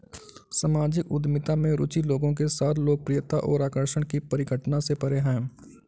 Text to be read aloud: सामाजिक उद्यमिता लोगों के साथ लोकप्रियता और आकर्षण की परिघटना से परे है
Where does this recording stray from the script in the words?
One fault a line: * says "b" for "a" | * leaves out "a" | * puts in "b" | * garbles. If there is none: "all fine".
* puts in "में रुचि"